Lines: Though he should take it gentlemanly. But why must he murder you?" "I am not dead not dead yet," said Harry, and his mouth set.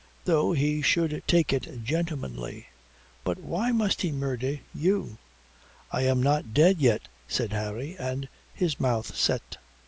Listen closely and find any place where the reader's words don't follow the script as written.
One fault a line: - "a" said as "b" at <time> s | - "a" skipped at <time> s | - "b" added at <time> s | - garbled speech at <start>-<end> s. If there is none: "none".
- "not dead" skipped at 6.8 s